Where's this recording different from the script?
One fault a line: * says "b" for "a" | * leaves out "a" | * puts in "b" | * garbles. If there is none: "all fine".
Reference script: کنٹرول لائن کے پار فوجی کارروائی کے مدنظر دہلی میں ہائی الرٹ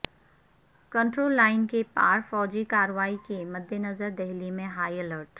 all fine